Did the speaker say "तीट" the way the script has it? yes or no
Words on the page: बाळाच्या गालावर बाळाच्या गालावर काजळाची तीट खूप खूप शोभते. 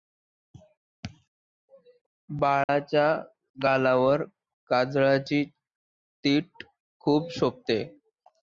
yes